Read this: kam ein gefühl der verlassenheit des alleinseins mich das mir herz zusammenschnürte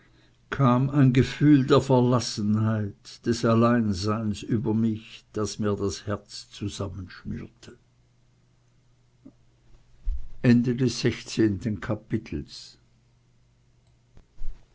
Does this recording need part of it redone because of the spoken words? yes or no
yes